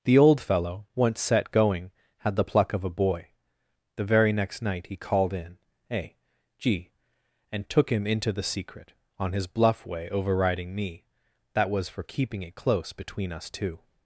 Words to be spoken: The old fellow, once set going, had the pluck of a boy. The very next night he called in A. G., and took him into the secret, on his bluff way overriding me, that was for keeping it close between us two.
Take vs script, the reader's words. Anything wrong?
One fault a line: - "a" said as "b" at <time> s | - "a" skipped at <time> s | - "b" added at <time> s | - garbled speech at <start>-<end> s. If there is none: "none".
none